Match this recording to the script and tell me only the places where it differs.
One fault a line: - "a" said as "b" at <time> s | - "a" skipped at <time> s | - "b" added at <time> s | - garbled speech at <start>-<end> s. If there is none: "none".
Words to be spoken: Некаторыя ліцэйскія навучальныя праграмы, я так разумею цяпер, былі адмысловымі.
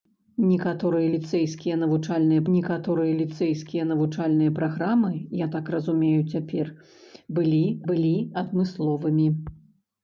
- "некаторыя ліцэйскія навучальныя" added at 2.5 s
- "былі" added at 7.9 s